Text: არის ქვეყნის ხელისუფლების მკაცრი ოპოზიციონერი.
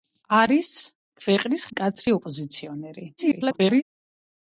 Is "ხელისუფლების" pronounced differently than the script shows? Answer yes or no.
yes